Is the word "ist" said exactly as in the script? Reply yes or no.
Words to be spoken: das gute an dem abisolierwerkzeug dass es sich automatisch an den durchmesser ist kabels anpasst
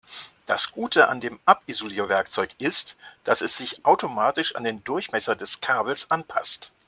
no